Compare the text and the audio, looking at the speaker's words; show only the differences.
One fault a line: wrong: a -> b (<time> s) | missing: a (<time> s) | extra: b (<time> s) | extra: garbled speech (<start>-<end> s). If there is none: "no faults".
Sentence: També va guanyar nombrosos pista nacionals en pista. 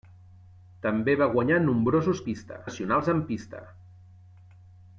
no faults